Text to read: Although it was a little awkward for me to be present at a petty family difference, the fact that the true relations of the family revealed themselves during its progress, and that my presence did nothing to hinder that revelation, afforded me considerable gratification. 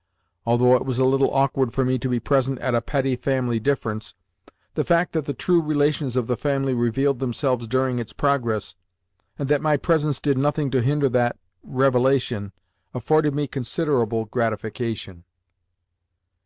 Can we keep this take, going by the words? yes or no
yes